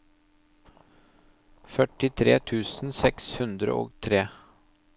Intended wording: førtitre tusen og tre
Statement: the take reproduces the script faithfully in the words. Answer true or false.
false